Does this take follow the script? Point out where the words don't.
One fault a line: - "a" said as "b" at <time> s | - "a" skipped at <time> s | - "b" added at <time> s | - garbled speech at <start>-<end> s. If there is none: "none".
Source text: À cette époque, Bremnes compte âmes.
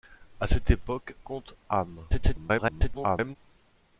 - "Bremnes" skipped at 1.1 s
- garbled speech at 2.1-3.4 s